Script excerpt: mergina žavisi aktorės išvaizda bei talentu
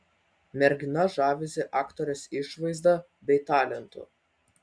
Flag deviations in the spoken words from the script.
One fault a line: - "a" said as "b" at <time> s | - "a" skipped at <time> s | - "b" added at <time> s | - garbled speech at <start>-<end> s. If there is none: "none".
none